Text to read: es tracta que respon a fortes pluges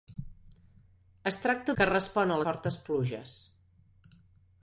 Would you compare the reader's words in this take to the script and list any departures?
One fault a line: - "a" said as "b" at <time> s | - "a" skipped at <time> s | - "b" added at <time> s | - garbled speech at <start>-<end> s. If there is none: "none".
none